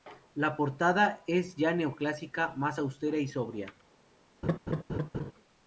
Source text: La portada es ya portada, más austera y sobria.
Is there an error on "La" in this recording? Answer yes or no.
no